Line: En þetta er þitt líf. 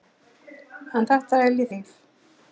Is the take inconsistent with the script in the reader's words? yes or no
yes